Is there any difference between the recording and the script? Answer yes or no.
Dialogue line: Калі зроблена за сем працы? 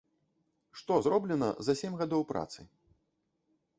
yes